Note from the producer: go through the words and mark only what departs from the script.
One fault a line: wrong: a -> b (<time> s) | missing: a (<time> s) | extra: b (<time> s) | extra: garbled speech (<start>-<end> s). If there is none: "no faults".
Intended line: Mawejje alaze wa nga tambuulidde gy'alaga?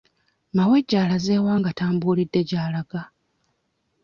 no faults